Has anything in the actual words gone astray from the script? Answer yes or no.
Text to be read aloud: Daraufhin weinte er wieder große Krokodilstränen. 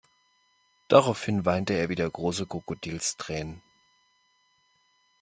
no